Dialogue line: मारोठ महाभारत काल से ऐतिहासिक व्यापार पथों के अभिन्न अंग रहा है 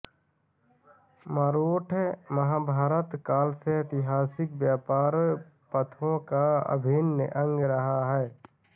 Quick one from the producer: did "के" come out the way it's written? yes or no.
no